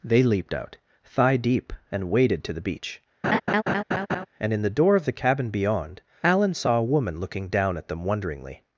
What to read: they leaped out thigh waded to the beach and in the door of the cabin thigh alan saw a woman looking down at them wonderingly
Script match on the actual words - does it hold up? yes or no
no